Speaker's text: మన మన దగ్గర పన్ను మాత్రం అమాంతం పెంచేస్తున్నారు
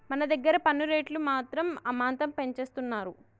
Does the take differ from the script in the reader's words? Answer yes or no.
yes